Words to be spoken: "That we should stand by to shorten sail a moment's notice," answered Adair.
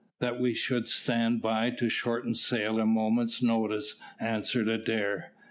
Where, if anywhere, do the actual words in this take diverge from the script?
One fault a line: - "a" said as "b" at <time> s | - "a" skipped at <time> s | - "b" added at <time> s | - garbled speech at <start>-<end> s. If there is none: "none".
none